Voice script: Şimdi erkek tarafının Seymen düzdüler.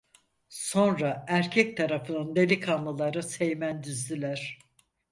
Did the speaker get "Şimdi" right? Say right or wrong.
wrong